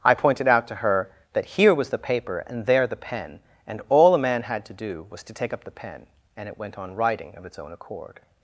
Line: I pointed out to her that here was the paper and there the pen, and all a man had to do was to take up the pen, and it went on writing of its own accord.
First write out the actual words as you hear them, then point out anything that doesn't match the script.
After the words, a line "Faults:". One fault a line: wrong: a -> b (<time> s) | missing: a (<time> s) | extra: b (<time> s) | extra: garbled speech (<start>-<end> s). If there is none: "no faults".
I pointed out to her that here was the paper and there the pen, and all a man had to do was to take up the pen, and it went on writing of its own accord.
Faults:
no faults